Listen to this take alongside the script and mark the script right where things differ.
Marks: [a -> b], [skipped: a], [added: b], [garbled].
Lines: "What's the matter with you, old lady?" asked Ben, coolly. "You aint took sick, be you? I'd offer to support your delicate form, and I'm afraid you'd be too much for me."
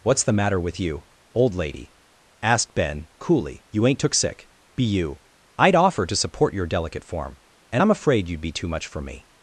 "What's the matter with you, old lady?" asked Ben, coolly. "You aint took sick, be you? I'd offer to support your delicate form, and I'm afraid you'd be too much for me."